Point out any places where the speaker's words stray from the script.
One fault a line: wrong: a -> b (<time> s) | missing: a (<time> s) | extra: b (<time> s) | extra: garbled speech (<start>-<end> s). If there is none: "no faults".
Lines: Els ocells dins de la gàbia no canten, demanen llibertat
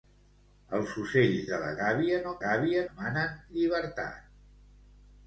missing: dins (1.4 s)
wrong: canten -> gàbia (2.5 s)